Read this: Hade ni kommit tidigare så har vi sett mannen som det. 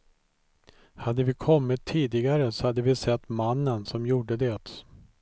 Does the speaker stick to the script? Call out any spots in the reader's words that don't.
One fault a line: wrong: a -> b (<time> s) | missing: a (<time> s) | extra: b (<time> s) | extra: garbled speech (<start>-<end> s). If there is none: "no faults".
wrong: ni -> vi (1.2 s)
wrong: har -> hade (2.7 s)
extra: gjorde (4.1 s)